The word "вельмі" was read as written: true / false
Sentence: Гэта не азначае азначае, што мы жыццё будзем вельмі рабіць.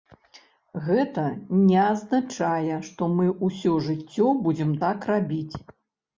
false